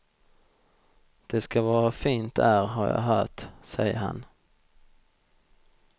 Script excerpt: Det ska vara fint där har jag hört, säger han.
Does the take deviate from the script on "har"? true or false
false